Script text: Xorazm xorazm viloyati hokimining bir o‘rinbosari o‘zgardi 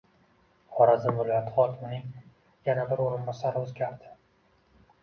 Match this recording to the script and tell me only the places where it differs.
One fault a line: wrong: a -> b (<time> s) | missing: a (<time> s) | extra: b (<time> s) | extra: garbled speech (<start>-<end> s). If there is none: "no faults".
missing: xorazm (1.2 s)
extra: yana (2.7 s)